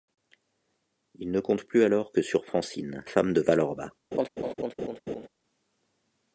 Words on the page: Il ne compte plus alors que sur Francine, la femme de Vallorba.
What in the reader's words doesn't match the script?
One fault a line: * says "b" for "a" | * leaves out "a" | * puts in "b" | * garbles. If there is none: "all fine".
* leaves out "la"